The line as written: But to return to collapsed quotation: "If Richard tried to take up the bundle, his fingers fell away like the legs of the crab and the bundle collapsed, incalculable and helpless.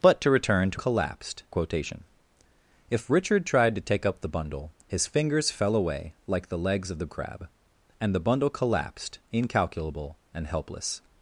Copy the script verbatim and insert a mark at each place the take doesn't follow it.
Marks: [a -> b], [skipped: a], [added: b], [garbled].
But to return to collapsed quotation: "If Richard tried to take up the bundle, his fingers fell away like the legs of the crab and the bundle collapsed, incalculable and helpless.